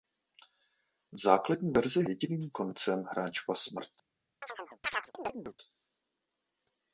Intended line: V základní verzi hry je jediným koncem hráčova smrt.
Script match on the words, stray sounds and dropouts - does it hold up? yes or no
no